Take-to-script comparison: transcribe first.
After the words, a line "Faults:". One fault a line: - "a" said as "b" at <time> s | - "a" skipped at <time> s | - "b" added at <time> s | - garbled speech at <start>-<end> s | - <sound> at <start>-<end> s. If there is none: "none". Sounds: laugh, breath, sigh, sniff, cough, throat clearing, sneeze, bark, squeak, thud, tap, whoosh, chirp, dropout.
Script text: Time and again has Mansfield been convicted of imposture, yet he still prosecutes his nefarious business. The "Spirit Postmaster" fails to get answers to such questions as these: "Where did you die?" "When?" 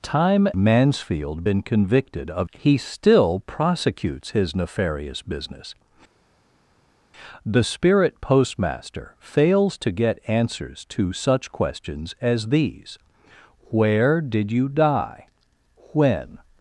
Time Mansfield been convicted of he still prosecutes his nefarious business. The "Spirit Postmaster" fails to get answers to such questions as these: "Where did you die?" "When?"
Faults:
- "and again has" skipped at 0.5 s
- "imposture yet" skipped at 2.5 s